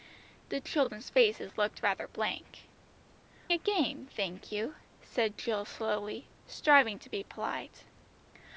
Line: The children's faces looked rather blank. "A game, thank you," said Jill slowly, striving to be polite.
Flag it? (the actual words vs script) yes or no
no